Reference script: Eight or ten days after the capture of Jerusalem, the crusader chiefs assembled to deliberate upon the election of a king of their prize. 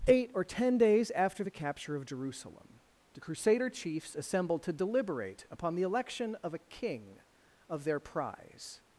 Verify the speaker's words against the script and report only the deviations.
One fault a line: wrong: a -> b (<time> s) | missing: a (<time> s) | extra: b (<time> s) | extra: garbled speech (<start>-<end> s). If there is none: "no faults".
no faults